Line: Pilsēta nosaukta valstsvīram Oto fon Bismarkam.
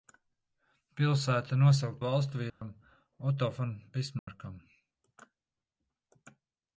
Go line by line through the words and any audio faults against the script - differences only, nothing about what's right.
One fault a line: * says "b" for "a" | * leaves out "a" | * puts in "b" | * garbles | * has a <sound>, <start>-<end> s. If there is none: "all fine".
* has a dropout, 2.5-2.6 s
* has a dropout, 4.2-4.3 s